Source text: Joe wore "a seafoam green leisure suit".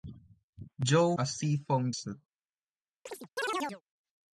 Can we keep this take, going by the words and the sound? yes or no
no